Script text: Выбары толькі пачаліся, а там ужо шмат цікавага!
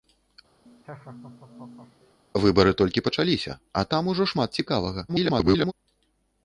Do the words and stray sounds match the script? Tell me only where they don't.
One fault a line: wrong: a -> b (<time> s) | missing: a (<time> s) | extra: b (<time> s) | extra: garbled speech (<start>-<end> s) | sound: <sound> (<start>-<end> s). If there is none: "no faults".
sound: laugh (0.7-2.2 s)
extra: garbled speech (5.1-5.7 s)